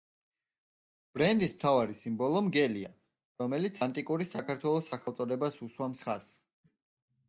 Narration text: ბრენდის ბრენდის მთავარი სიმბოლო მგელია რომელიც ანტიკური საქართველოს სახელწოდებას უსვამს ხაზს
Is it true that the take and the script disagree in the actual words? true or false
true